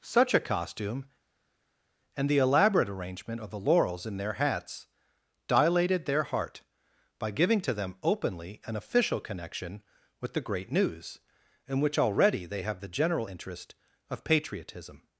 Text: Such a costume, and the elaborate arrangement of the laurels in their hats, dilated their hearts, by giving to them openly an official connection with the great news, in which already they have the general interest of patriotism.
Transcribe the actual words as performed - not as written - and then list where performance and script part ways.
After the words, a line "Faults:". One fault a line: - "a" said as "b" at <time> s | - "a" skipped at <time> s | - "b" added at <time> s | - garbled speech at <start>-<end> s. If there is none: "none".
Such a costume, and the elaborate arrangement of the laurels in their hats, dilated their heart, by giving to them openly an official connection with the great news, in which already they have the general interest of patriotism.
Faults:
- "hearts" said as "heart" at 6.2 s